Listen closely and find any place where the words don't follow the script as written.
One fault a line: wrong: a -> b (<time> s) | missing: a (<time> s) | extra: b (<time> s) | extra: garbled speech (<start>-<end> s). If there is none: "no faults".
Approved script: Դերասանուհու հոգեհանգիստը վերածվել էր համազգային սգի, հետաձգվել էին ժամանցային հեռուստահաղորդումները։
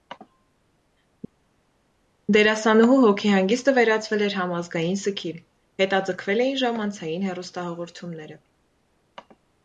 no faults